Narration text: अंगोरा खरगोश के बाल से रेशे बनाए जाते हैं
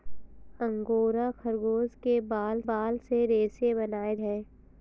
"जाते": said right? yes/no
no